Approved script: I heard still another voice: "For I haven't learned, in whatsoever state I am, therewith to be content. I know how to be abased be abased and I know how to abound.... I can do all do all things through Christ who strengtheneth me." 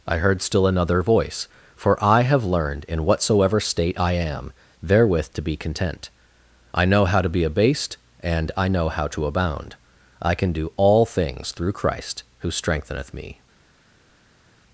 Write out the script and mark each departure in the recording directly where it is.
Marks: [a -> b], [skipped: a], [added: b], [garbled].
I heard still another voice: "For I [haven't -> have] learned, in whatsoever state I am, therewith to be content. I know how to be abased [skipped: be abased] and I know how to abound.... I can do all [skipped: do all] things through Christ who strengtheneth me."